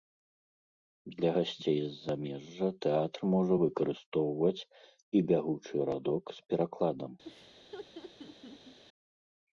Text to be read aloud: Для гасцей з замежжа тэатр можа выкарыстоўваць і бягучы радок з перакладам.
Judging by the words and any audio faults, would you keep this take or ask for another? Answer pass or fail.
fail